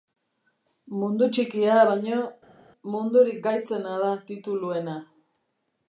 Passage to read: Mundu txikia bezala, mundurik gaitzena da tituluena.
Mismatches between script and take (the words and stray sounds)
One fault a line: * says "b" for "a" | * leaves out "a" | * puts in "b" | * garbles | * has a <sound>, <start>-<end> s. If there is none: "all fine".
* says "baino" for "bezala"